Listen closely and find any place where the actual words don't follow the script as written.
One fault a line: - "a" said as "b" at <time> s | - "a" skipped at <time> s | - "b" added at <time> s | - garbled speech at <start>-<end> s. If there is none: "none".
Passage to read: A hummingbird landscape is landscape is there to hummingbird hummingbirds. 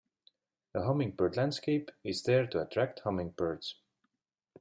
- "landscape is" skipped at 2.2 s
- "hummingbird" said as "attract" at 2.6 s